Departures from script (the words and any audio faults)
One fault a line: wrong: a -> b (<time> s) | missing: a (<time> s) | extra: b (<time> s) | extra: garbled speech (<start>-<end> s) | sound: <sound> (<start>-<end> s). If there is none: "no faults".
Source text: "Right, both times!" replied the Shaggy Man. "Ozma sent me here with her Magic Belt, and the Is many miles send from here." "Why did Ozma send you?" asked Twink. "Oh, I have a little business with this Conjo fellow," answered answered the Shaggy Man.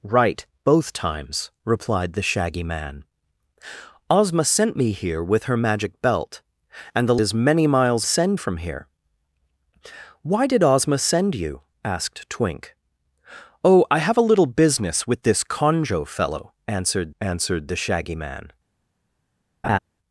sound: laugh (19.6-19.8 s)